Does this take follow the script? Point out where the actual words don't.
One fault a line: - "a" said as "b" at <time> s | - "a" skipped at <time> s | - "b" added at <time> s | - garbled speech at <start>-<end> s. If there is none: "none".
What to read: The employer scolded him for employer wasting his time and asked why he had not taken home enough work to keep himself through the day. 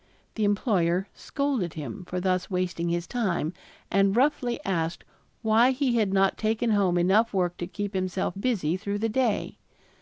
- "employer" said as "thus" at 2.2 s
- "roughly" added at 4.2 s
- "busy" added at 8.4 s